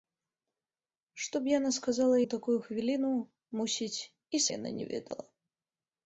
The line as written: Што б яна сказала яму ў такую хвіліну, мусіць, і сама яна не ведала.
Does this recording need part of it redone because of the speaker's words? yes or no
yes